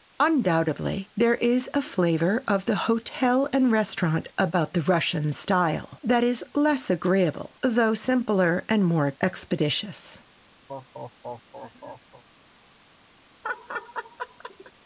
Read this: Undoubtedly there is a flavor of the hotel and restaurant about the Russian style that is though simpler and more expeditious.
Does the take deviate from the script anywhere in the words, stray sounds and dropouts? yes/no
yes